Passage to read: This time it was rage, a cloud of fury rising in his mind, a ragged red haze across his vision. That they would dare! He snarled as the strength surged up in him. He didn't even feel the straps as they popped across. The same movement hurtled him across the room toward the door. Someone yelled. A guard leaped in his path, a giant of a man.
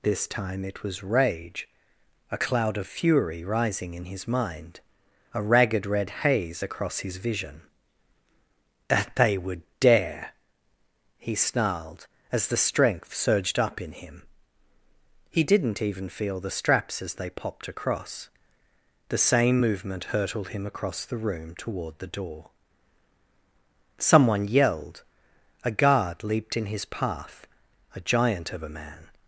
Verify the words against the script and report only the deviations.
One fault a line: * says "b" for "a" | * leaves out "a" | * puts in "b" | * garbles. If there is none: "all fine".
all fine